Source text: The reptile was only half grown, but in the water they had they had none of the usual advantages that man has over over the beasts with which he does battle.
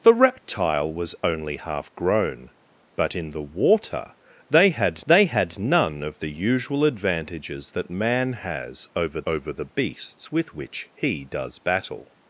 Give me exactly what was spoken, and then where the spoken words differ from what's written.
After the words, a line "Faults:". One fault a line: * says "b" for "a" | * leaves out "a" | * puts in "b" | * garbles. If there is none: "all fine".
The reptile was only half grown, but in the water they had they had none of the usual advantages that man has over over the beasts with which he does battle.
Faults:
all fine